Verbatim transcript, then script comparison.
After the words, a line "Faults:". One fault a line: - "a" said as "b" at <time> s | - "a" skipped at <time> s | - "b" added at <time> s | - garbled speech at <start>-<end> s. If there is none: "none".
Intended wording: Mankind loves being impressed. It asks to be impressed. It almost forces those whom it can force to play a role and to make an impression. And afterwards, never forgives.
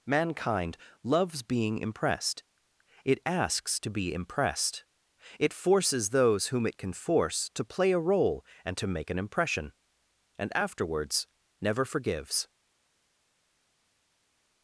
Mankind loves being impressed. It asks to be impressed. It forces those whom it can force to play a role and to make an impression. And afterwards, never forgives.
Faults:
- "almost" skipped at 5.5 s